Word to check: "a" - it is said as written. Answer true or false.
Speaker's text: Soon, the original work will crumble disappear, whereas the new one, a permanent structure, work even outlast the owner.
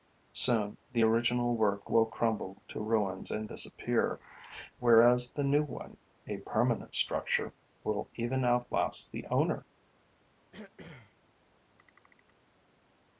true